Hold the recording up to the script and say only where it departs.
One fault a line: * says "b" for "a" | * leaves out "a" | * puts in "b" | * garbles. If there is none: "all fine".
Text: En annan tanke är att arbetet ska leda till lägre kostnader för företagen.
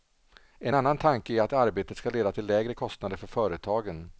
all fine